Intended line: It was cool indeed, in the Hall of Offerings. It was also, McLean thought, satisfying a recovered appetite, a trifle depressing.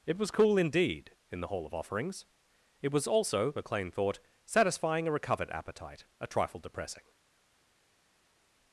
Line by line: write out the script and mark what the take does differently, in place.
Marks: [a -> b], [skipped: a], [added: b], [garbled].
It was cool indeed, in the Hall of Offerings. It was also, McLean thought, satisfying a recovered appetite, a trifle depressing.